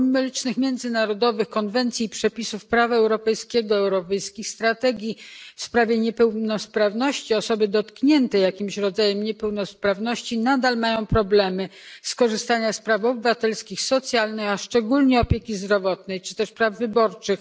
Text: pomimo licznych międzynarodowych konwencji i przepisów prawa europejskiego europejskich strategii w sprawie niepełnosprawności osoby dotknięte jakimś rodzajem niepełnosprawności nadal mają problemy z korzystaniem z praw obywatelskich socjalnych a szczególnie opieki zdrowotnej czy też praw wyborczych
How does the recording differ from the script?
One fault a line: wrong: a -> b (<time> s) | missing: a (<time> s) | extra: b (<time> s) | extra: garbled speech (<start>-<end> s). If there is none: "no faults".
no faults